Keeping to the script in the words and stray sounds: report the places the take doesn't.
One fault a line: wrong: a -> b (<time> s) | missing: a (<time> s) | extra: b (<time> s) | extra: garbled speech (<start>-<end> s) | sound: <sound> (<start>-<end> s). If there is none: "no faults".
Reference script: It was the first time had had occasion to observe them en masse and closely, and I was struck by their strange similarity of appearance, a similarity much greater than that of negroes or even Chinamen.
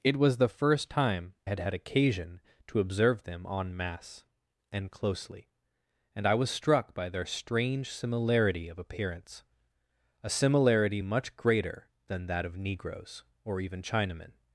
no faults